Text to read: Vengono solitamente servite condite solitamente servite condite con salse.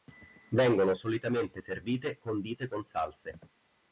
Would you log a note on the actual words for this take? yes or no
yes